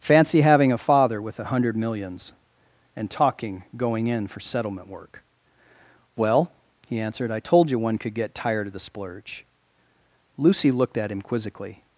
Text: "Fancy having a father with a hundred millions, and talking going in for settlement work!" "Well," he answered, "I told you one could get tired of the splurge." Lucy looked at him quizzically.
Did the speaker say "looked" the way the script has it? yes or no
yes